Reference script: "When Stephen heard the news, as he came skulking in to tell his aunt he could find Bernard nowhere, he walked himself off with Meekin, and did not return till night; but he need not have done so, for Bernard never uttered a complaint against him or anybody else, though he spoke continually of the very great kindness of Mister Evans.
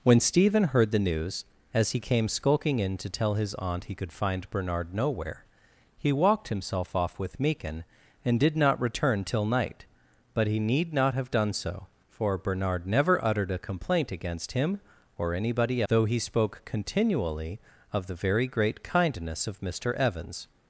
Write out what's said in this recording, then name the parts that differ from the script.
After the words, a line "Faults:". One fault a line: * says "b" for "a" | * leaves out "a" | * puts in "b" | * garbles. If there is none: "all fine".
"When Stephen heard the news, as he came skulking in to tell his aunt he could find Bernard nowhere, he walked himself off with Meekin, and did not return till night; but he need not have done so, for Bernard never uttered a complaint against him or anybody though he spoke continually of the very great kindness of Mister Evans.
Faults:
* leaves out "else"